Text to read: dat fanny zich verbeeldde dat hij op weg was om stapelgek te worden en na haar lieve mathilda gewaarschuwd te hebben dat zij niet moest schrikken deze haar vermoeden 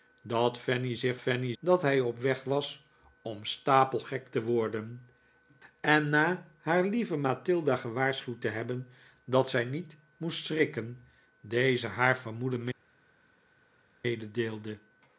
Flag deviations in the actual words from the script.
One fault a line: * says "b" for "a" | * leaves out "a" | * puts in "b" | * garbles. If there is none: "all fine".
* says "fanny" for "verbeeldde"